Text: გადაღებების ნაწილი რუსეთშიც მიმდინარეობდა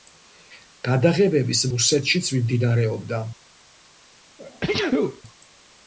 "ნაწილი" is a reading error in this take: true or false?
true